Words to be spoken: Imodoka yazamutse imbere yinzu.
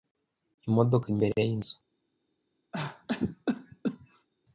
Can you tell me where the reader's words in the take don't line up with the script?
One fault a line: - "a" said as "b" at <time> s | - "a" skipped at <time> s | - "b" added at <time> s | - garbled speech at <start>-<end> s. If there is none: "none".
- "yazamutse" skipped at 1.1 s